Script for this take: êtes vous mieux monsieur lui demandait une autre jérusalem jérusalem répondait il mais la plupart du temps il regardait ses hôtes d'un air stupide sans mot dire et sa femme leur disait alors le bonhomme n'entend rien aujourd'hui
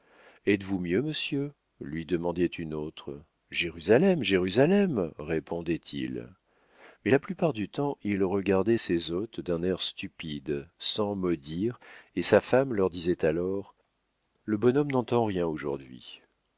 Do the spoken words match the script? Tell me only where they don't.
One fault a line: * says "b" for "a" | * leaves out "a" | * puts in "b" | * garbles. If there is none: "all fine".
all fine